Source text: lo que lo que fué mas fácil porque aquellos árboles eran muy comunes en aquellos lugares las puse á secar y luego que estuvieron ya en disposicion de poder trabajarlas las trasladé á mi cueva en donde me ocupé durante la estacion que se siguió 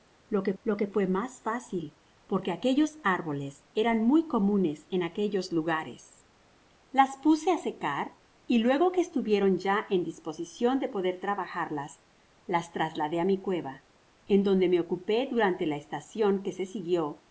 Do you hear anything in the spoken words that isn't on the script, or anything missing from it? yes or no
no